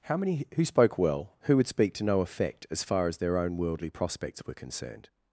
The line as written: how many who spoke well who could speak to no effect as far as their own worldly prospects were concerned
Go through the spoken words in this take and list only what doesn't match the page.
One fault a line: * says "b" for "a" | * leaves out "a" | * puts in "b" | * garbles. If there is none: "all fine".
* says "would" for "could"